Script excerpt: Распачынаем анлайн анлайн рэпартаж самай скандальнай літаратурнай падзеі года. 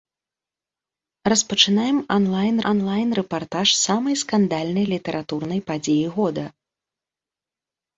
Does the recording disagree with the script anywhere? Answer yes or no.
no